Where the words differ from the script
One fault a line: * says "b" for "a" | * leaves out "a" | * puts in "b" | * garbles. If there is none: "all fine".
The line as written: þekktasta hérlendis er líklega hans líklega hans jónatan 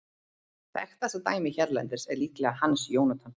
* puts in "dæmið"
* leaves out "líklega hans"